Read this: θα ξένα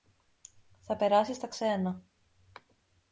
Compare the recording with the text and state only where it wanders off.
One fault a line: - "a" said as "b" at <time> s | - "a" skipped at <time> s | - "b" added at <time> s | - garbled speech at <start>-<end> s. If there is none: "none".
- "περάσει στα" added at 0.9 s